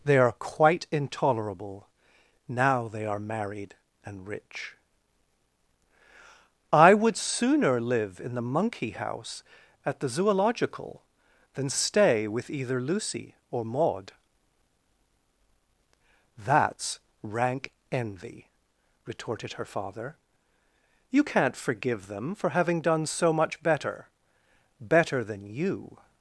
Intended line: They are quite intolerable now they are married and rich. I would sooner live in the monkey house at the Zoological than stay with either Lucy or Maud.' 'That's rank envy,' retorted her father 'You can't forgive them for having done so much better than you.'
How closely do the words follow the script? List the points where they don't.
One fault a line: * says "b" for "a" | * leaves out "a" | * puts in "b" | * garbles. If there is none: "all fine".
* puts in "better"